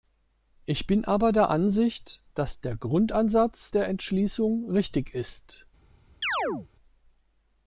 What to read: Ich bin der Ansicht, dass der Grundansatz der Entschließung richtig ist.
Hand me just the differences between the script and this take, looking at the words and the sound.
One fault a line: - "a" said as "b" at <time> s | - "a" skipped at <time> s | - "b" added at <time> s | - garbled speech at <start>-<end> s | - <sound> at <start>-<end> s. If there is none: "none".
- "aber" added at 1.1 s
- chirp at 6.2-6.7 s